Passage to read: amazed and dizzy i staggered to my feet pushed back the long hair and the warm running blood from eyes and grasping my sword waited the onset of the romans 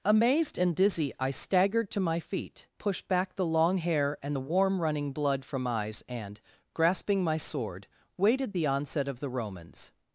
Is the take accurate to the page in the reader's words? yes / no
yes